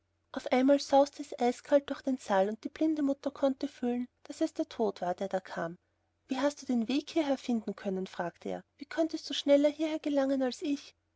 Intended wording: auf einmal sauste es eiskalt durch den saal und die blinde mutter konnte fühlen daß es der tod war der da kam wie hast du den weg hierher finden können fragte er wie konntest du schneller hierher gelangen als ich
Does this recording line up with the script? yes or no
yes